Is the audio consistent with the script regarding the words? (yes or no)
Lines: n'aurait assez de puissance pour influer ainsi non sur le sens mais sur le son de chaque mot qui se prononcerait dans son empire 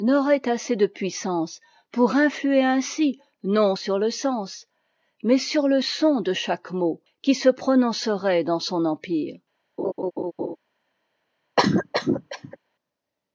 yes